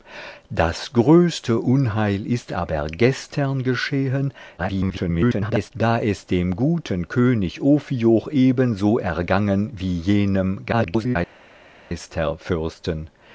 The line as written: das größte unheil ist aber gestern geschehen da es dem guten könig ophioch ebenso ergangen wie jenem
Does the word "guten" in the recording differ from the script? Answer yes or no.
no